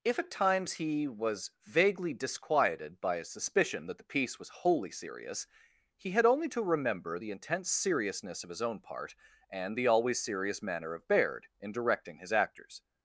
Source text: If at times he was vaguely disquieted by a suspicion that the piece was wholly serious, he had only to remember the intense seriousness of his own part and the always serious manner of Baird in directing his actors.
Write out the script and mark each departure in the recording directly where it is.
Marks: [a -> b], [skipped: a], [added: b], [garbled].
If at times he was vaguely disquieted by a suspicion that the piece was wholly serious, he had only to remember the intense seriousness of his own part and the always serious manner of Baird in directing his actors.